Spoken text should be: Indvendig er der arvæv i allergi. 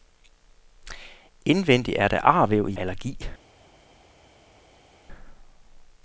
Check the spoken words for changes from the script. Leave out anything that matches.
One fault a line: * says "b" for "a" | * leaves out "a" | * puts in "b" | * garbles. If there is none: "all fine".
all fine